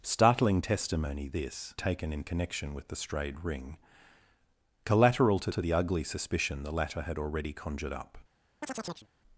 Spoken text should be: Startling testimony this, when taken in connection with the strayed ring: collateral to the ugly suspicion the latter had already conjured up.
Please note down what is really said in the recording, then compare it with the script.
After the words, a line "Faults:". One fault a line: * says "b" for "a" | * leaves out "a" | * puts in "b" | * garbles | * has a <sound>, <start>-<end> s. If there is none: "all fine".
Startling testimony this, taken in connection with the strayed ring: collateral to to the ugly suspicion the latter had already conjured up.
Faults:
* leaves out "when"
* puts in "to"
* has a chirp, 8.6-9.1 s